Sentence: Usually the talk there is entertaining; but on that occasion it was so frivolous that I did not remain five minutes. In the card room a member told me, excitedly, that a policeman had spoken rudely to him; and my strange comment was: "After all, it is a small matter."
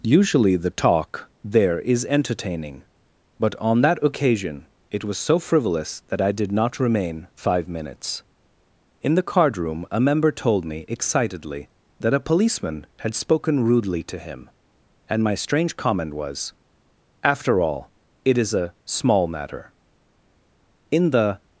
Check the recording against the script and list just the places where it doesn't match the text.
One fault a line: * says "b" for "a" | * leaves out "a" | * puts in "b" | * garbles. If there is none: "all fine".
* puts in "In the"